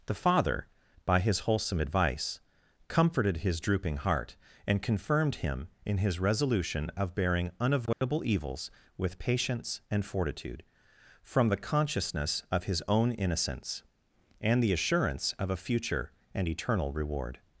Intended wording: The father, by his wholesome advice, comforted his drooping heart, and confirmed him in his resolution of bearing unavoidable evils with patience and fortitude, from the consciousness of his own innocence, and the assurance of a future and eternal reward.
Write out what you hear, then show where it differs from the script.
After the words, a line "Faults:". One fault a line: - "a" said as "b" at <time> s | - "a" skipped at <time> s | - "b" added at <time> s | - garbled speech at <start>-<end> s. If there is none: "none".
The father, by his wholesome advice, comforted his drooping heart, and confirmed him in his resolution of bearing unavoidable evils with patience and fortitude, from the consciousness of his own innocence, and the assurance of a future and eternal reward.
Faults:
none